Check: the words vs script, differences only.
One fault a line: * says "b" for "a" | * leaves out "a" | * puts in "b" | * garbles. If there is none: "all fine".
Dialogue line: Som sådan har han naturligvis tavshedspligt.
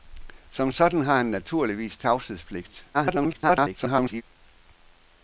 * garbles